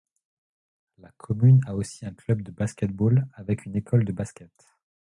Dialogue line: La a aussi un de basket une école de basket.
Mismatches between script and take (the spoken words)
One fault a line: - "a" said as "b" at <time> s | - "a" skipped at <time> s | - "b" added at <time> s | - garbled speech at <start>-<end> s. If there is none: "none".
- "commune" added at 1.1 s
- "club" added at 2.1 s
- "ball avec" added at 2.9 s